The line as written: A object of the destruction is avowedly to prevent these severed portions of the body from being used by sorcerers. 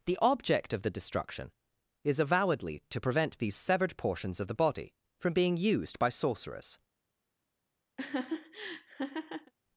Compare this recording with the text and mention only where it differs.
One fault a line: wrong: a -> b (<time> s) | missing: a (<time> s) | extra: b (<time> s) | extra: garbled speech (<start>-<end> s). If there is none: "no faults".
wrong: A -> The (0.1 s)